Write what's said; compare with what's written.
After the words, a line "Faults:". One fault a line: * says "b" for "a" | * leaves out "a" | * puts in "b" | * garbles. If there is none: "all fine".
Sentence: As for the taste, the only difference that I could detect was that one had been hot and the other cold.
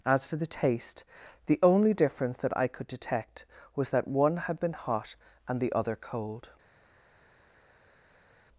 As for the taste, the only difference that I could detect was that one had been hot and the other cold.
Faults:
all fine